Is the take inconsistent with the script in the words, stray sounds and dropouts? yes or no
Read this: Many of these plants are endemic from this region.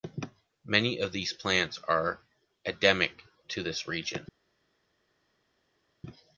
yes